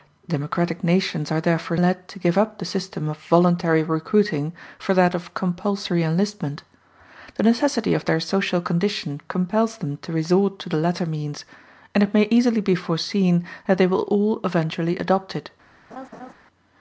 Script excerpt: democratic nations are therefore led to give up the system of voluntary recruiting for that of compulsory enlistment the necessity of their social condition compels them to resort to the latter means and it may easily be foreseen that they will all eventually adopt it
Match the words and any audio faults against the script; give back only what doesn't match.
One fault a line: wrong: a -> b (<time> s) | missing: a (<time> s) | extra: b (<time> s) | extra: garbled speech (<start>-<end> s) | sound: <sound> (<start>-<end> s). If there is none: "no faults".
sound: laugh (15.9-16.3 s)